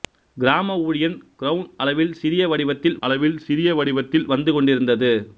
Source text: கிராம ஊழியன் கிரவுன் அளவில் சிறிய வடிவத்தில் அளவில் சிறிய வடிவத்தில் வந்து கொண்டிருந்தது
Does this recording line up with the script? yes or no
yes